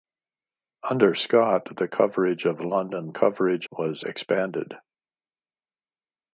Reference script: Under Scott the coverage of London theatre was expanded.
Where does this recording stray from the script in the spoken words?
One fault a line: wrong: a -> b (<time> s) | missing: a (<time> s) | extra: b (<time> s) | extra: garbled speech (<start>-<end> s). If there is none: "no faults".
wrong: theatre -> coverage (3.1 s)